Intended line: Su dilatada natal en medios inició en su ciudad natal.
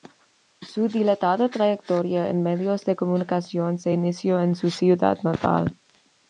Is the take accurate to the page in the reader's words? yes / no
no